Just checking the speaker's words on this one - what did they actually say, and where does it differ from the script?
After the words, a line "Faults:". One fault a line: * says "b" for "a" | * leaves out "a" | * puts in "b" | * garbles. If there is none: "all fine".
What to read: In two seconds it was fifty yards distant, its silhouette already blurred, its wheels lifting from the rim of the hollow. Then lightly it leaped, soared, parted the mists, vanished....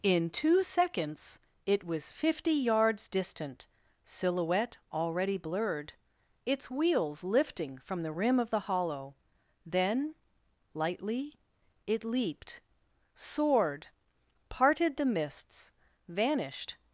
In two seconds it was fifty yards distant, silhouette already blurred, its wheels lifting from the rim of the hollow. Then lightly it leaped, soared, parted the mists, vanished....
Faults:
* leaves out "its"